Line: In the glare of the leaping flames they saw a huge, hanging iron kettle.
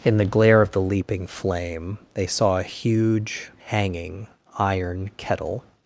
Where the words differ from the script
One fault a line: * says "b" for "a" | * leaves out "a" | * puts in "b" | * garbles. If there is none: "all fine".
* says "flame" for "flames"